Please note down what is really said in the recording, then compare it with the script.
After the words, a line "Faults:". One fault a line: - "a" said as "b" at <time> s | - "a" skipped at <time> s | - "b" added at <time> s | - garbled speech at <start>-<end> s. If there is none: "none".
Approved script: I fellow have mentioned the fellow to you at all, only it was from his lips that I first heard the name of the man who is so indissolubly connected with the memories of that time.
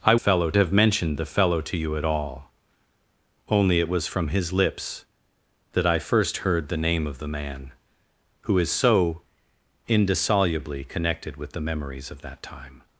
I fellow have mentioned the fellow to you at all, only it was from his lips that I first heard the name of the man who is so indissolubly connected with the memories of that time.
Faults:
none